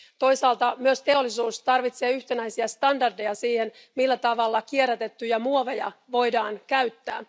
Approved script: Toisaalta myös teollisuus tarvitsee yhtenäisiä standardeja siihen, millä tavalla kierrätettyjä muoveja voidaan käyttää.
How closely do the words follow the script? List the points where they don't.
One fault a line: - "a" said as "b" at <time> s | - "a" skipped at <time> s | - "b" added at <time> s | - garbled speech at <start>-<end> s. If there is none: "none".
none